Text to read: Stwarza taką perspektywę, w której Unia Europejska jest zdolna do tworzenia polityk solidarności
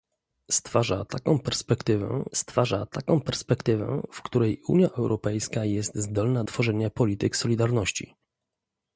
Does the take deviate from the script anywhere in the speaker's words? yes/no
yes